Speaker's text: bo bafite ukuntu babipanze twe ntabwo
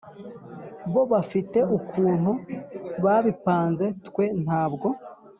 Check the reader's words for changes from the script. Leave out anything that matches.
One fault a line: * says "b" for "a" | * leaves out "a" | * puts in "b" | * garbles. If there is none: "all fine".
all fine